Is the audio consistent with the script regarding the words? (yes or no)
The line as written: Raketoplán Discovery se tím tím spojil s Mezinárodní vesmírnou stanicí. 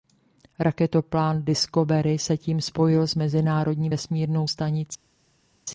no